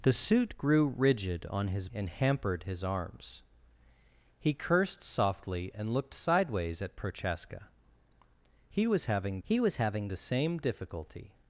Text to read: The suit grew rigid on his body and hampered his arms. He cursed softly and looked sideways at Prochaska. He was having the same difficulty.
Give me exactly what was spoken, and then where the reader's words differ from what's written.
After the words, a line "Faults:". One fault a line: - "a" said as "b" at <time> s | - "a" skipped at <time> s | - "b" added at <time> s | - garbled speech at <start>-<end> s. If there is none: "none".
The suit grew rigid on his and hampered his arms. He cursed softly and looked sideways at Prochaska. He was having he was having the same difficulty.
Faults:
- "body" skipped at 1.9 s
- "he was having" added at 9.4 s